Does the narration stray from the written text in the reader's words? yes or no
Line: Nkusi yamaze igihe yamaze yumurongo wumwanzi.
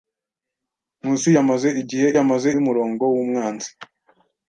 no